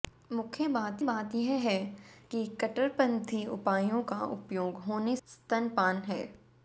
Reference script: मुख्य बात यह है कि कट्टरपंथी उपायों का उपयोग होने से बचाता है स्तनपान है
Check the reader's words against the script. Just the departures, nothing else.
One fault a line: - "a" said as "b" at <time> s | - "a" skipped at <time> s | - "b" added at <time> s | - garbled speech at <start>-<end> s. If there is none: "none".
- "बात" added at 1.0 s
- "से बचाता है" skipped at 5.2 s